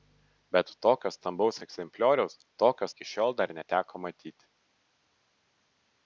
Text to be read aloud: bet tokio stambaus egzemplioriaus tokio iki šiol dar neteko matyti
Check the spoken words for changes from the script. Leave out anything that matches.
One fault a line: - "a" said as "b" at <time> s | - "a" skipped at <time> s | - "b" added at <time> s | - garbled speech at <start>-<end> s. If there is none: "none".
none